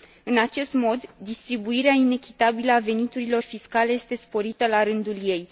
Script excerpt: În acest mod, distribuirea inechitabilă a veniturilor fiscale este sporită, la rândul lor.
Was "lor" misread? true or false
true